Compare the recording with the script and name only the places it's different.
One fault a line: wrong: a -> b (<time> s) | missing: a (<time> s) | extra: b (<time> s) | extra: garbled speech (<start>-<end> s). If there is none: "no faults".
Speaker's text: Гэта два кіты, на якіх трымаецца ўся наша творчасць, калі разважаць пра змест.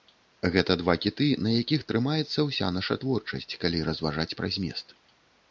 no faults